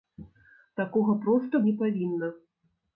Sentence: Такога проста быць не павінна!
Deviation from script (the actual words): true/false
true